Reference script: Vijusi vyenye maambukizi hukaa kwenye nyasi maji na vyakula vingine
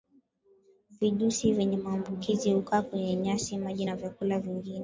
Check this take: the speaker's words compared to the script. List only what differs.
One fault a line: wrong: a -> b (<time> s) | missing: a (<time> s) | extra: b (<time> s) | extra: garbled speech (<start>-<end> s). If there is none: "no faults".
no faults